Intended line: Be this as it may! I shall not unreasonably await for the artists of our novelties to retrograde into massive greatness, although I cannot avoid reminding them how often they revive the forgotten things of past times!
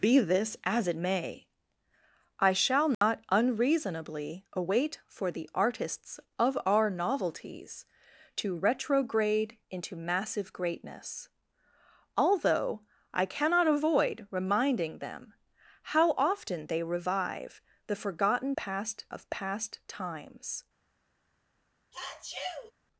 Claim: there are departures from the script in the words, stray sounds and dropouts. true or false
true